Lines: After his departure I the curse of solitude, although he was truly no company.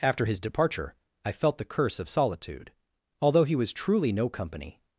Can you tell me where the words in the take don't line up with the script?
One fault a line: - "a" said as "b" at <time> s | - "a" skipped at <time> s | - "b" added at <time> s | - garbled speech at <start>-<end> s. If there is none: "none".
- "felt" added at 1.3 s